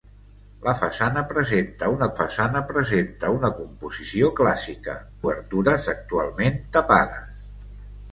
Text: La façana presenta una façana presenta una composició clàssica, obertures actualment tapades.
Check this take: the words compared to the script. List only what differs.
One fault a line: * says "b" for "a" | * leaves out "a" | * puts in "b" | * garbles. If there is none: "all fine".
all fine